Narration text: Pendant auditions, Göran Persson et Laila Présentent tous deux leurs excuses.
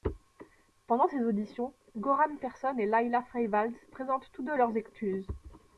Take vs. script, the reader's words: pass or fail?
fail